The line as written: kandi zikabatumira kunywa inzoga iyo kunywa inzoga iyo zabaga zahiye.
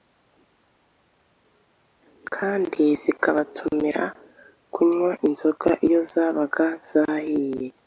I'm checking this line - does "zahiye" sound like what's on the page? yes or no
yes